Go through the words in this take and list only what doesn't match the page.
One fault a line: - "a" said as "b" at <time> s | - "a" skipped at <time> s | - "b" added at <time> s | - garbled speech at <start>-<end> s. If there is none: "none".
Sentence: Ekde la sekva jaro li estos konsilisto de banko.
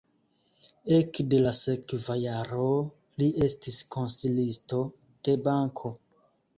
- "estos" said as "estis" at 3.5 s